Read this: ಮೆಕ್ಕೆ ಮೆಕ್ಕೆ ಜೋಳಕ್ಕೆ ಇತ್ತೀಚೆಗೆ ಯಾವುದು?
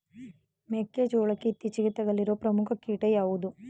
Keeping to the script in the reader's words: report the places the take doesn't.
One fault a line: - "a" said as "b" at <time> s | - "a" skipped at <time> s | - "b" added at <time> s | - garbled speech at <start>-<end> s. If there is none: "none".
- "ಮೆಕ್ಕೆ" skipped at 1.0 s
- "ತಗುಲಿರುವ ಪ್ರಮುಖ ಕೀಟ" added at 1.9 s